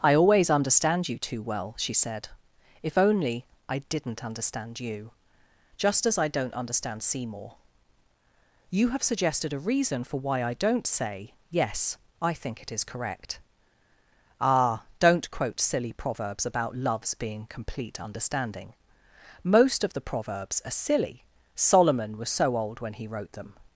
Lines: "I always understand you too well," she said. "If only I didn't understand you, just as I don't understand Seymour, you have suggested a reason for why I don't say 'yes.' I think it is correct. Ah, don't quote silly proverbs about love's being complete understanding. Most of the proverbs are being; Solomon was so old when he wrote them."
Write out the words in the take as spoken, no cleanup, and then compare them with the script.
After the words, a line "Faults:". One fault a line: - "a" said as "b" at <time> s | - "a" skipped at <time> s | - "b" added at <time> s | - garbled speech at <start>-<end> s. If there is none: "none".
"I always understand you too well," she said. "If only I didn't understand you, just as I don't understand Seymour, you have suggested a reason for why I don't say 'yes.' I think it is correct. Ah, don't quote silly proverbs about love's being complete understanding. Most of the proverbs are silly; Solomon was so old when he wrote them."
Faults:
- "being" said as "silly" at 20.7 s